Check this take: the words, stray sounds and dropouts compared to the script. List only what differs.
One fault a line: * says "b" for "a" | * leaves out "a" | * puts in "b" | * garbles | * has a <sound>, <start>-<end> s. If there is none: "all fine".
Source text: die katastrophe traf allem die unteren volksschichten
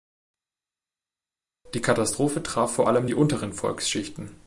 * puts in "vor"